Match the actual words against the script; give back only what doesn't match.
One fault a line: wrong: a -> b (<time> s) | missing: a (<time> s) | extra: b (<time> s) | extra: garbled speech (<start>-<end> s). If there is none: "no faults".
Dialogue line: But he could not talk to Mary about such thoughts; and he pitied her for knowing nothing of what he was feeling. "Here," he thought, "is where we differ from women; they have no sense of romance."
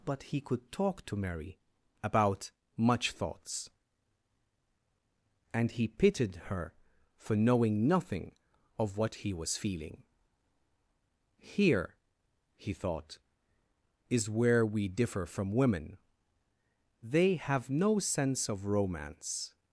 missing: not (0.7 s)
wrong: such -> much (2.8 s)